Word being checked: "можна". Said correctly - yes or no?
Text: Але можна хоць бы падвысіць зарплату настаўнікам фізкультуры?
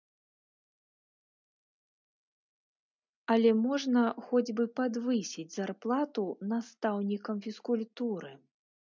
yes